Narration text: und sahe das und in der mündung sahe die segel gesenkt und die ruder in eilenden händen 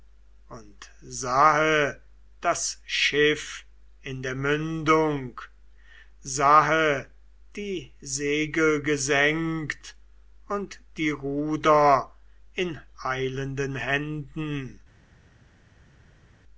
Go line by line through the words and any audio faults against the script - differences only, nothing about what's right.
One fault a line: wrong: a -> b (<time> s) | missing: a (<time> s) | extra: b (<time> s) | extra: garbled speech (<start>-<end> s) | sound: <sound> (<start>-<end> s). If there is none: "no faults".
wrong: und -> schiff (2.9 s)